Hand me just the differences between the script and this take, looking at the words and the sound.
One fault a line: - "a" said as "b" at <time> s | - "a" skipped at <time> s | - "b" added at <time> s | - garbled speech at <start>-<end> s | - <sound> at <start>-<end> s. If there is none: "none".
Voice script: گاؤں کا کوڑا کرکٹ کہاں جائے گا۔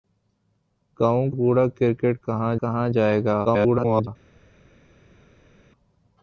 - "کا" skipped at 1.3 s
- "کہاں" added at 2.6 s
- garbled speech at 3.4-4.1 s